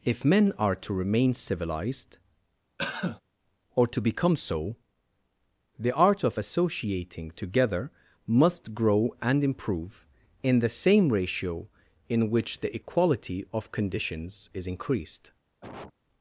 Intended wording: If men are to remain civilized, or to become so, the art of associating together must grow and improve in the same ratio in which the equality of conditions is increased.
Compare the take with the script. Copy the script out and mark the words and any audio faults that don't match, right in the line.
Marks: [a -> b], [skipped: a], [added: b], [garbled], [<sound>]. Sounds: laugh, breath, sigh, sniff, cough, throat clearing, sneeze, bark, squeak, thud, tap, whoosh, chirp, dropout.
If men are to remain civilized, [cough] or to become so, the art of associating together must grow and improve in the same ratio in which the equality of conditions is increased. [cough]